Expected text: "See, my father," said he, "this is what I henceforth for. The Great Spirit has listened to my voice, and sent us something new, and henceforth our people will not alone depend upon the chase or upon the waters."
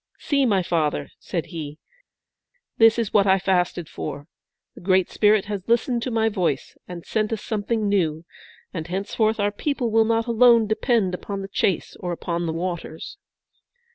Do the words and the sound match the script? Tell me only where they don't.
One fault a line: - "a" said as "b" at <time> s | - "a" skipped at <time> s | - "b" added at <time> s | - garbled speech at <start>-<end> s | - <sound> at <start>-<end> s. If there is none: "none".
- "henceforth" said as "fasted" at 3.4 s